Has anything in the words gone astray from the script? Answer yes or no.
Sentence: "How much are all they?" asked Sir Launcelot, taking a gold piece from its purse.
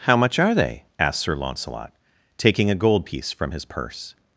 yes